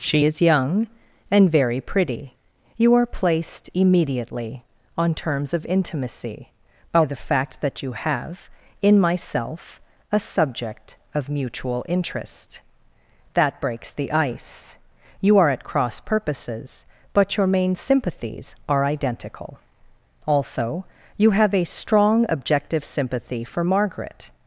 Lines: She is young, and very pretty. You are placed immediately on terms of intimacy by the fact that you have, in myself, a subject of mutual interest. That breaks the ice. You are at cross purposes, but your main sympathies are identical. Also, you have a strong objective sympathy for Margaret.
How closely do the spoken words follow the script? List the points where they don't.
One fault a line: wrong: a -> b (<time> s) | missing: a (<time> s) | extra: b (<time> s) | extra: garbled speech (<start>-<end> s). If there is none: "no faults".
no faults